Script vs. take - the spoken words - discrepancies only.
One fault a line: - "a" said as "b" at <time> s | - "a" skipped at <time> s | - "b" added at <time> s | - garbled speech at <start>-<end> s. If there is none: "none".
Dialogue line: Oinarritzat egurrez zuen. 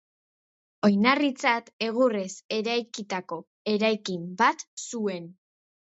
- "eraikitako eraikin bat" added at 2.6 s